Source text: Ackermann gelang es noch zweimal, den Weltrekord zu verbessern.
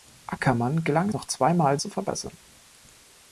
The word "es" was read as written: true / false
false